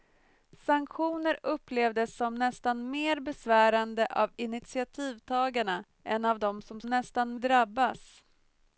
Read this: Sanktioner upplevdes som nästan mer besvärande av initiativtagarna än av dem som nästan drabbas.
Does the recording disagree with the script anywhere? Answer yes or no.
no